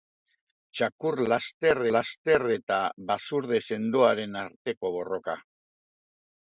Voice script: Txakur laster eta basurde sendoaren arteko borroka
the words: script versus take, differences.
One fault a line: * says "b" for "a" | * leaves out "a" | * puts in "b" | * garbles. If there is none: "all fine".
* puts in "laster"